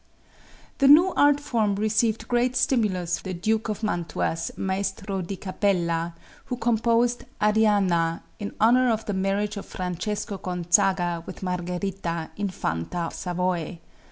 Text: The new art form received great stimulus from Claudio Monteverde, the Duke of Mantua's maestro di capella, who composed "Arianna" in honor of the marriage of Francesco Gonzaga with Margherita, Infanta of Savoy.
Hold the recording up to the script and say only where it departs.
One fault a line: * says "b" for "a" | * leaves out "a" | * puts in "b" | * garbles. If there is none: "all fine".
* leaves out "from Claudio Monteverde"
* leaves out "of"